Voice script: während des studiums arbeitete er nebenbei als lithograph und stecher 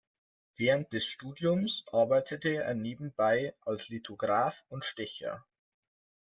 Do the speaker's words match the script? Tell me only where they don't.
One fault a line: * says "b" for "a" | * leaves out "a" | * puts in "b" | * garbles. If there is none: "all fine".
all fine